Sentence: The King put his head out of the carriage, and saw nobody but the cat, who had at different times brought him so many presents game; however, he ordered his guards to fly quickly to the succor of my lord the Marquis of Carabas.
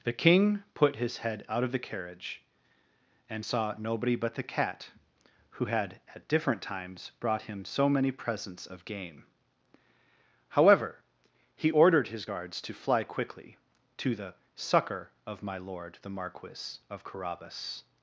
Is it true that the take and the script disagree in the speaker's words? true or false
true